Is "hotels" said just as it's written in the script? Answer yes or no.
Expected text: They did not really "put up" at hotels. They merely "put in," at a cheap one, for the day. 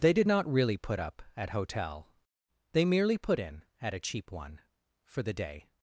no